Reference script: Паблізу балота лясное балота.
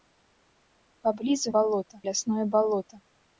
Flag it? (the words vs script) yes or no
no